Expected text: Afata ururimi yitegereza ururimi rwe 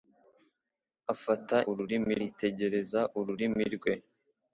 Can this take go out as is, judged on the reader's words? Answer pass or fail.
pass